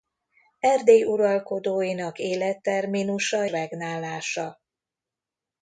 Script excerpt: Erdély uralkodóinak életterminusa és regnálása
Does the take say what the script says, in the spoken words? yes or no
no